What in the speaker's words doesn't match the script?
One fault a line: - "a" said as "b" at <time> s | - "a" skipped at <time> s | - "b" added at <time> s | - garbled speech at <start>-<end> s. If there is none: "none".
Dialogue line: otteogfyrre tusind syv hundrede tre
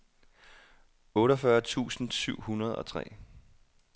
- "og" added at 2.7 s